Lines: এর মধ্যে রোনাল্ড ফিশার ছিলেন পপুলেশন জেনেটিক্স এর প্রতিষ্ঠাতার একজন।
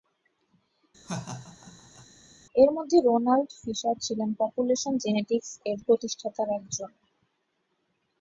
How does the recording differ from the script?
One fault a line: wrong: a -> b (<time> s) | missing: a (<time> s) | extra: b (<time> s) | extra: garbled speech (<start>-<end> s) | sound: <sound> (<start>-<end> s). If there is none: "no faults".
sound: laugh (1.0-2.1 s)